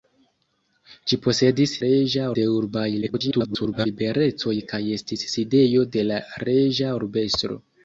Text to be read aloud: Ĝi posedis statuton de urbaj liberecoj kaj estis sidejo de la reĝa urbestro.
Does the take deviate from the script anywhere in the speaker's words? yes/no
yes